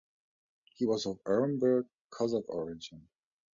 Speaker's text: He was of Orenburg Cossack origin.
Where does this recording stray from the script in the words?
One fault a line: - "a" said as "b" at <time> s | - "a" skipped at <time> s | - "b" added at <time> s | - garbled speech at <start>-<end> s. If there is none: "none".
none